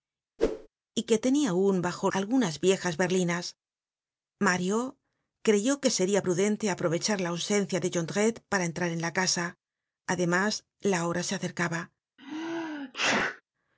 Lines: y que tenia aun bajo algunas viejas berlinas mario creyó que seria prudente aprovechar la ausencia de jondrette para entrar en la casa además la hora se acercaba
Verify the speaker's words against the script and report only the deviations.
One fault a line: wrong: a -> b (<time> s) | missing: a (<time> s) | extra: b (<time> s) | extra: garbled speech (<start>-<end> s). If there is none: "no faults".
no faults